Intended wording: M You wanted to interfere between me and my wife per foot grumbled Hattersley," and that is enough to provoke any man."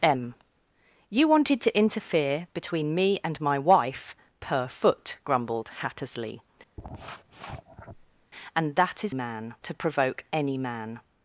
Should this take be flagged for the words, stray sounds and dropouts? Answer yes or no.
yes